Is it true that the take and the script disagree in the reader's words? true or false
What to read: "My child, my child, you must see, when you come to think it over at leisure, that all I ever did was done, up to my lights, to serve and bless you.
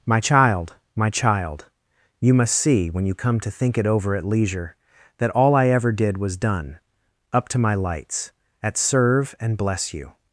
true